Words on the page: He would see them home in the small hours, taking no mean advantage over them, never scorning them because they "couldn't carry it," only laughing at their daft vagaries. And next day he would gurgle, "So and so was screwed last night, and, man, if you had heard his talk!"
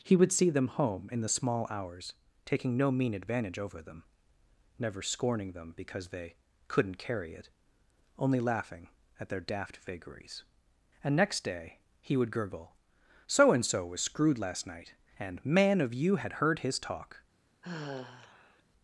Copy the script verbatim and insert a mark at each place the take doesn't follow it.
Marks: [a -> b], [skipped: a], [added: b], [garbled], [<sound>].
He would see them home in the small hours, taking no mean advantage over them, never scorning them because they "couldn't carry it," only laughing at their daft vagaries. And next day he would gurgle, "So and so was screwed last night, and, man, [if -> of] you had heard his talk!" [sigh]